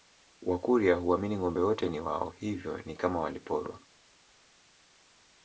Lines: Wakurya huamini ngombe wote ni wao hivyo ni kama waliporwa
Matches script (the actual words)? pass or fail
pass